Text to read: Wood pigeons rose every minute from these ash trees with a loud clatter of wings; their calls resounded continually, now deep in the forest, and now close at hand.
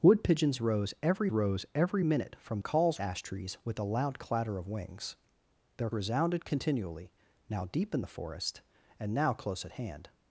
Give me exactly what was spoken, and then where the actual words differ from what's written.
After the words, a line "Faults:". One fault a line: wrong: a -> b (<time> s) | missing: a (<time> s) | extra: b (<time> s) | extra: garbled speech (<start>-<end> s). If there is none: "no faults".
Wood pigeons rose every rose every minute from calls ash trees with a loud clatter of wings; their resounded continually, now deep in the forest, and now close at hand.
Faults:
extra: rose every (1.3 s)
wrong: these -> calls (2.6 s)
missing: calls (5.9 s)